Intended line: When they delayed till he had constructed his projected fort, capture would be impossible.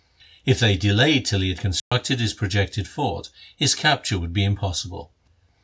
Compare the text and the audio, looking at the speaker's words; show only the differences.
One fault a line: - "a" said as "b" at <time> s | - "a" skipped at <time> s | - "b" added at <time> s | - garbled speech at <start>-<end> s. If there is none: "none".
- "When" said as "If" at 0.5 s
- "his" added at 3.6 s